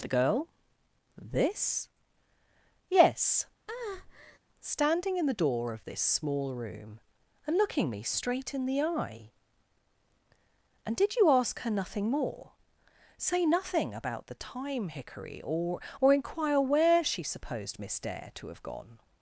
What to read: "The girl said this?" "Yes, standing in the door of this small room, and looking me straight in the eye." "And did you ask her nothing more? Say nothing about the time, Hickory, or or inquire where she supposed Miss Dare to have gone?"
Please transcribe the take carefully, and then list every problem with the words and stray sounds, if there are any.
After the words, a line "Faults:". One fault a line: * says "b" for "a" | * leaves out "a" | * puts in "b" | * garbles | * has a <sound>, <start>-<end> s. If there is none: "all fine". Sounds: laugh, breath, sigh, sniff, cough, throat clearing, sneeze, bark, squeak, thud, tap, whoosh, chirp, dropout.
"The girl this?" "Yes, standing in the door of this small room, and looking me straight in the eye." "And did you ask her nothing more? Say nothing about the time, Hickory, or or inquire where she supposed Miss Dare to have gone?"
Faults:
* leaves out "said"
* has a breath, 3.7-4.4 s